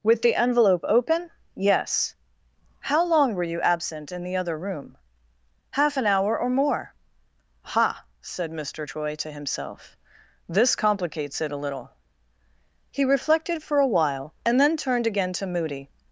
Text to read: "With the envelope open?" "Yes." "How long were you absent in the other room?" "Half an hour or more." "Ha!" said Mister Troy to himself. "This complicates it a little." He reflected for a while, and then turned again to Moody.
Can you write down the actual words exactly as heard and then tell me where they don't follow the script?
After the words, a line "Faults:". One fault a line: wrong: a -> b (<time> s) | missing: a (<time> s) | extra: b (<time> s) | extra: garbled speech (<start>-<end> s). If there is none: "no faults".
"With the envelope open?" "Yes." "How long were you absent in the other room?" "Half an hour or more." "Ha!" said Mister Troy to himself. "This complicates it a little." He reflected for a while, and then turned again to Moody.
Faults:
no faults